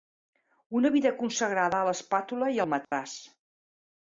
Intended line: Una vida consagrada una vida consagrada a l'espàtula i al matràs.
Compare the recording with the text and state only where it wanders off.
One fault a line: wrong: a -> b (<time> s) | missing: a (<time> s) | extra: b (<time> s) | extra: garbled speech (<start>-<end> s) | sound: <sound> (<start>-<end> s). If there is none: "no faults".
missing: una vida consagrada (1.8 s)
sound: dropout (2.8-2.9 s)